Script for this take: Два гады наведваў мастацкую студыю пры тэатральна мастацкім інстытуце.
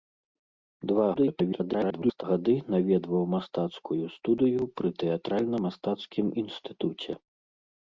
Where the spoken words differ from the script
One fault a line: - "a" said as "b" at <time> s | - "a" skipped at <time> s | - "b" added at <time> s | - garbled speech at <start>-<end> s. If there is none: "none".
- garbled speech at 1.1-2.2 s